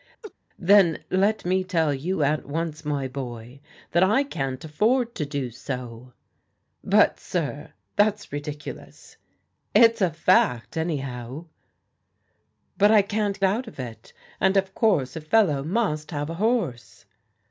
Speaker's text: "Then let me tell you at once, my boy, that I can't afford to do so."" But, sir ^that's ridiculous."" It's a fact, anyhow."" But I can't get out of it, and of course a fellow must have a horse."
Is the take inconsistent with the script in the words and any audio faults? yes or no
yes